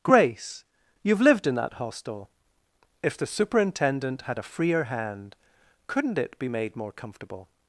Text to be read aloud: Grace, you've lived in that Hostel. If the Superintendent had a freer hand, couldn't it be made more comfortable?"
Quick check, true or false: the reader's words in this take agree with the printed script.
true